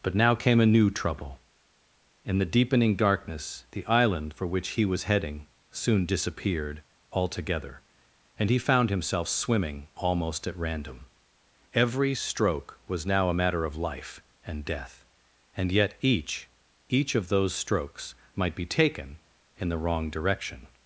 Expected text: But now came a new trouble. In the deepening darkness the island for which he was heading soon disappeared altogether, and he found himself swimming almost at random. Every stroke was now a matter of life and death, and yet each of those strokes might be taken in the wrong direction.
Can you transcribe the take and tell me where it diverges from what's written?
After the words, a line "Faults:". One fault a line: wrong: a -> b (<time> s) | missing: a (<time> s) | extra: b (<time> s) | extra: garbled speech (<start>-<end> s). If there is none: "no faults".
But now came a new trouble. In the deepening darkness the island for which he was heading soon disappeared altogether, and he found himself swimming almost at random. Every stroke was now a matter of life and death, and yet each each of those strokes might be taken in the wrong direction.
Faults:
extra: each (16.9 s)